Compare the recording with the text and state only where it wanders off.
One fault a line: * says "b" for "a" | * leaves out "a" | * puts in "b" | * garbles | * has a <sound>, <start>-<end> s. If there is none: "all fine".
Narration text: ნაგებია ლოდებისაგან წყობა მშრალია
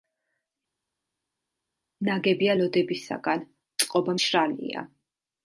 all fine